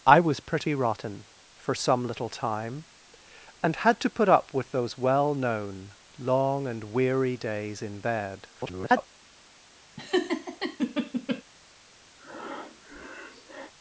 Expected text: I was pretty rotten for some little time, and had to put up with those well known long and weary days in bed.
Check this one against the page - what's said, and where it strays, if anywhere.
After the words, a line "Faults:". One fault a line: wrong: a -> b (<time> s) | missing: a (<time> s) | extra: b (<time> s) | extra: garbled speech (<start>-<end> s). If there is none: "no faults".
I was pretty rotten for some little time, and had to put up with those well known long and weary days in bed. [garbled]
Faults:
extra: garbled speech (8.5-9.1 s)